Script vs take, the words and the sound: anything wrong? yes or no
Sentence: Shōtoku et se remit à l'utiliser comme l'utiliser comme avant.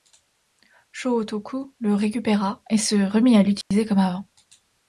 yes